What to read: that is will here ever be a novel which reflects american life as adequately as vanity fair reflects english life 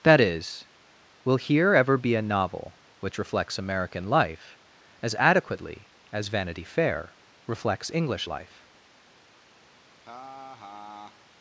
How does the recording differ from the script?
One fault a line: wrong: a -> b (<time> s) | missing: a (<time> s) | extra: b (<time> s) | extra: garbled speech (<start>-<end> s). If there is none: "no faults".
no faults